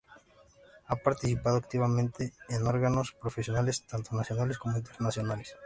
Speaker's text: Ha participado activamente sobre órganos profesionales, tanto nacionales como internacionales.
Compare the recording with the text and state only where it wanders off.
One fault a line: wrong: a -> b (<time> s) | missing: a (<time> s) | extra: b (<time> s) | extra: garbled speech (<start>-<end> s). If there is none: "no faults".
wrong: sobre -> en (2.5 s)